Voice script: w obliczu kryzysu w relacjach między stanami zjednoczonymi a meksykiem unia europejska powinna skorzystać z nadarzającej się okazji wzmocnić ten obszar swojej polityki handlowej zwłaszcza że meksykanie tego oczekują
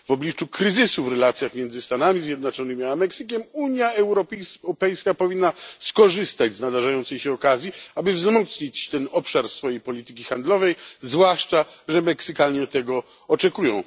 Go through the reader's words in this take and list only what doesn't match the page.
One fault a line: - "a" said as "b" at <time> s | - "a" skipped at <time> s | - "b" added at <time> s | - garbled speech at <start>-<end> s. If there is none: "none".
- "aby" added at 8.0 s